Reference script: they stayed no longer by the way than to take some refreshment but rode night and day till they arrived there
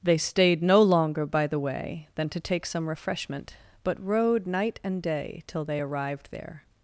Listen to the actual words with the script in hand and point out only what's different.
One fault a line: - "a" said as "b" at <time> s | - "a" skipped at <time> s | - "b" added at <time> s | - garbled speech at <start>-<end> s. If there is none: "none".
none